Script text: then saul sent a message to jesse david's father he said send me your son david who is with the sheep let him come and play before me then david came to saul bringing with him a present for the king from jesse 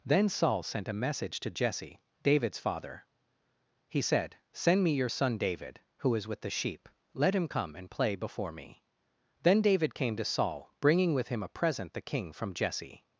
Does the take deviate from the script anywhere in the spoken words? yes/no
yes